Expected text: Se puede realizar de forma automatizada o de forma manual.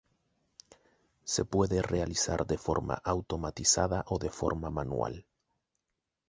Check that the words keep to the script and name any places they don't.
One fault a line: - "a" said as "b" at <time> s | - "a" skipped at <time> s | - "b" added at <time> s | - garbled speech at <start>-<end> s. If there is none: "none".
none